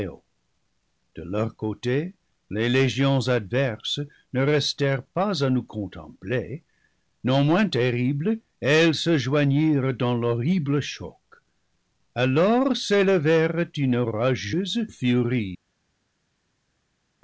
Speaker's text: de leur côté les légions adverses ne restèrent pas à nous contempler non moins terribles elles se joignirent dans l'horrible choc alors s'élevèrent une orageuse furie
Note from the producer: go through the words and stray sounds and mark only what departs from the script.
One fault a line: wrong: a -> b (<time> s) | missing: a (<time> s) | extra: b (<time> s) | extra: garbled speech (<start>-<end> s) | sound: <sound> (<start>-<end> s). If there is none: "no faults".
no faults